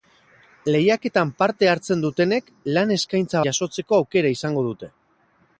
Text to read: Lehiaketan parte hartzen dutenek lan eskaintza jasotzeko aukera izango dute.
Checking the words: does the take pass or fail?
pass